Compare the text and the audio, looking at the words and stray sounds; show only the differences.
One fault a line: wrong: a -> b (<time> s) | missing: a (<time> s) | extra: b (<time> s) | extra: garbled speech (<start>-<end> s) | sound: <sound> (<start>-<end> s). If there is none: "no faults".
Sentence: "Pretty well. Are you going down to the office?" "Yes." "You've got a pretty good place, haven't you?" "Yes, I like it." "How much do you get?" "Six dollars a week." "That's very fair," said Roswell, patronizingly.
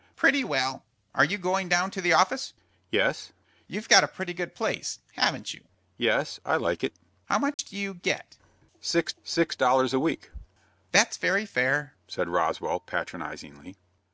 sound: dropout (7.5-7.6 s)
extra: six (9.2 s)